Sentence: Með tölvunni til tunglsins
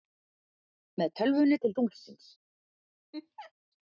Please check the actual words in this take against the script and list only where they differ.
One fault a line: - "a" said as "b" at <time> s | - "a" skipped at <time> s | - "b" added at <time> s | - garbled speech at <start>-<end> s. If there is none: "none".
none